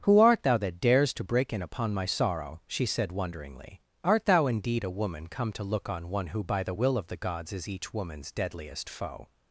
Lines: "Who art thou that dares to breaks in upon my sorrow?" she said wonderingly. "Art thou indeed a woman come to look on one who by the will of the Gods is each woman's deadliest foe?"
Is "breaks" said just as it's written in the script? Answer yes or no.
no